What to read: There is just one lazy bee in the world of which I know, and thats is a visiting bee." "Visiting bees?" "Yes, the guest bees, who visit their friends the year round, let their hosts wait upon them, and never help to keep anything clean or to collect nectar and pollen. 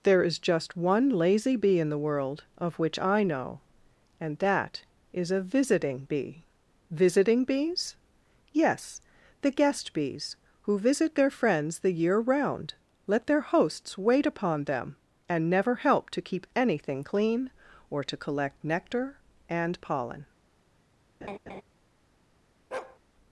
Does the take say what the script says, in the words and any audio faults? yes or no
no